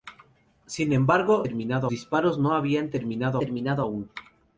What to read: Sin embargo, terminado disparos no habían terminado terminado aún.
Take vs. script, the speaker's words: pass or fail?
pass